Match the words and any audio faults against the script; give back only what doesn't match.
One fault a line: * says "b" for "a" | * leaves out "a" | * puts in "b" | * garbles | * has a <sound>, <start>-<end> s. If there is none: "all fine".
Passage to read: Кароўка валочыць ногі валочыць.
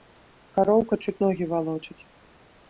* says "чуць" for "валочыць"